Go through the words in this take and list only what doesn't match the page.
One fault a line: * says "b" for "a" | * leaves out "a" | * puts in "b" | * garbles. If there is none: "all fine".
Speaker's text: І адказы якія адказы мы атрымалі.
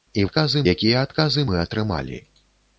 all fine